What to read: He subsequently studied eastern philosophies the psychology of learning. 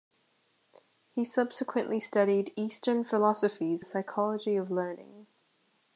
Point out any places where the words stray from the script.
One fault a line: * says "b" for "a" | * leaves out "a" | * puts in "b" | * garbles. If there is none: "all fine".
all fine